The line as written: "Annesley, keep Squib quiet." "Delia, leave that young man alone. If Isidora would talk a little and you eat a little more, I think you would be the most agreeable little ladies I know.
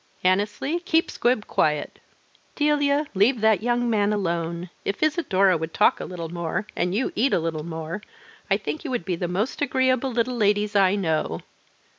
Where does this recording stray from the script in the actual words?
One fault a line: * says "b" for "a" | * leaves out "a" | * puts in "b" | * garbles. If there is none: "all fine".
* puts in "more"